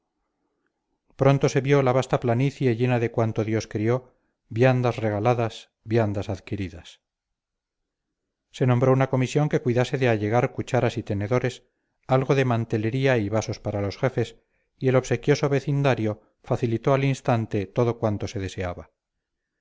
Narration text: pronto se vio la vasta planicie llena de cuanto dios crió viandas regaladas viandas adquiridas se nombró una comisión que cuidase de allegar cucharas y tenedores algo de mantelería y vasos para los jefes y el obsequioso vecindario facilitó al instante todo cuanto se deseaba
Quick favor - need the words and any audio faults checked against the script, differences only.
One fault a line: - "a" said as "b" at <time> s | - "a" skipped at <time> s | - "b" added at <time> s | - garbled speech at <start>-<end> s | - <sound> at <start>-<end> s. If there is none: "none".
none